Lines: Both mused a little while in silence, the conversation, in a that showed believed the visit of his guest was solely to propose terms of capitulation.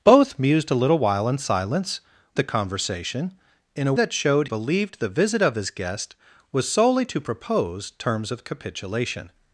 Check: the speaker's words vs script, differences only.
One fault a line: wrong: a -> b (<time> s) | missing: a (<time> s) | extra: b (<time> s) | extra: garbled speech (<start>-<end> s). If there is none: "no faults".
no faults